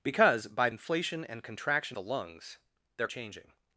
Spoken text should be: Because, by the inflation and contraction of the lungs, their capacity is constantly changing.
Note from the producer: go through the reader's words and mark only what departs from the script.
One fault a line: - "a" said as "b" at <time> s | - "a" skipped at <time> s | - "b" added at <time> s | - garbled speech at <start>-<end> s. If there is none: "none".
- "the" skipped at 0.7 s
- "of" skipped at 2.0 s
- "capacity is constantly" skipped at 3.1 s